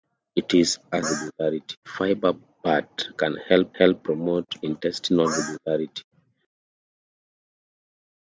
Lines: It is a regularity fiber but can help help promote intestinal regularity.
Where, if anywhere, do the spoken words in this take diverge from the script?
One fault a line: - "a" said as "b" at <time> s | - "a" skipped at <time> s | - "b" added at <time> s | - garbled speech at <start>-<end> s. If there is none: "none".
none